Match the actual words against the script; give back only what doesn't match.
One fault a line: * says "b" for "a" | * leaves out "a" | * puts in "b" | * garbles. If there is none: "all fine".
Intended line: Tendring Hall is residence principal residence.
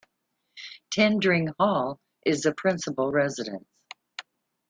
* says "the" for "residence"